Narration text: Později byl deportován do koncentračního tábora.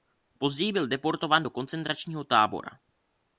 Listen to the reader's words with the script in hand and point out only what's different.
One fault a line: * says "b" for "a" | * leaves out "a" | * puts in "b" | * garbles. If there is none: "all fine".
all fine